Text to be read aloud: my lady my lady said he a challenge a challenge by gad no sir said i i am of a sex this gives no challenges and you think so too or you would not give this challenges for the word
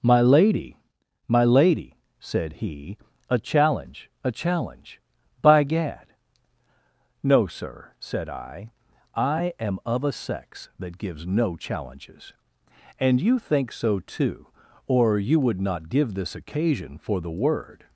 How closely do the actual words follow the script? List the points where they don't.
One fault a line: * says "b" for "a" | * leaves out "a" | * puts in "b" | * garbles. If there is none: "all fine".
* says "that" for "this"
* says "occasion" for "challenges"